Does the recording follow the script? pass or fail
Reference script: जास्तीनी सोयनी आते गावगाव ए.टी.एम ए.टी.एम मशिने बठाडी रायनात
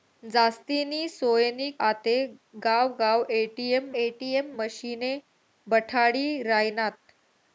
pass